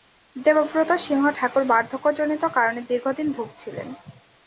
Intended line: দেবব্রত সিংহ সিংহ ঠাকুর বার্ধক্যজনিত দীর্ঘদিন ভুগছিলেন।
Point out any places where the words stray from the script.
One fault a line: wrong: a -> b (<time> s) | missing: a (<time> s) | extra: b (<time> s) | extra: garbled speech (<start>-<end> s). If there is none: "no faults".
missing: সিংহ (1.2 s)
extra: কারণে (2.6 s)